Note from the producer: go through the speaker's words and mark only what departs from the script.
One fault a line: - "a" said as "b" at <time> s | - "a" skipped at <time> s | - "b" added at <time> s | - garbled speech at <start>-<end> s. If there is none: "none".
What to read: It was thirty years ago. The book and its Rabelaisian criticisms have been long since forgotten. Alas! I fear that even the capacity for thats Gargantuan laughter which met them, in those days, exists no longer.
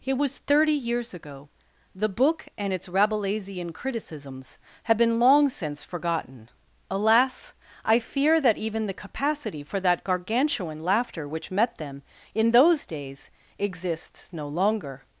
- "thats" said as "that" at 9.8 s